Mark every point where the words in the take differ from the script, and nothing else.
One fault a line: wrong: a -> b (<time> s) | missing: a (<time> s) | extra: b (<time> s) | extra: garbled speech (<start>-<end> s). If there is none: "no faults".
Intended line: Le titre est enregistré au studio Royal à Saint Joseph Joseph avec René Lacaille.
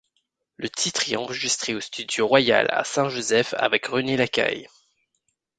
missing: Joseph (3.5 s)